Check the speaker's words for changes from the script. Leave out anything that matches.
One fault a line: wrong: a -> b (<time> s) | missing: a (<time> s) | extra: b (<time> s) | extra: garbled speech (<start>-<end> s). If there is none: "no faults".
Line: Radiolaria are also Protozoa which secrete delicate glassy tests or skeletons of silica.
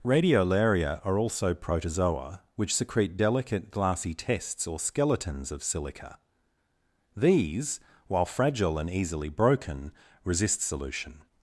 extra: These while fragile and easily broken resist solution (7.2 s)